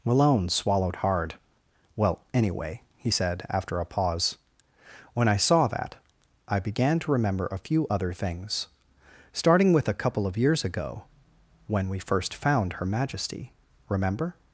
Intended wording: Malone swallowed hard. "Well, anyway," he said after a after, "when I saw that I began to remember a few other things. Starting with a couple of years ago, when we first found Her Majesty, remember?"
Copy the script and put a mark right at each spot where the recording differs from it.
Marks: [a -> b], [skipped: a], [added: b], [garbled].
Malone swallowed hard. "Well, anyway," he said after a [after, -> pause] "when I saw that I began to remember a few other things. Starting with a couple of years ago, when we first found Her Majesty, remember?"